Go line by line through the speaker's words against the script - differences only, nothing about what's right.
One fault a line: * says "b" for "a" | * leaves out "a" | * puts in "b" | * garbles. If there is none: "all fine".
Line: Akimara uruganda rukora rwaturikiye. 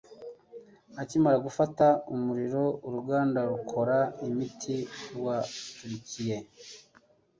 * puts in "gufata umuriro"
* puts in "imiti"